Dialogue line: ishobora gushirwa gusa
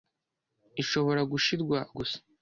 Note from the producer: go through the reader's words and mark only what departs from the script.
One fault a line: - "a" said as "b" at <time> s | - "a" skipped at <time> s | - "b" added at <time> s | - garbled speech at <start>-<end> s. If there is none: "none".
none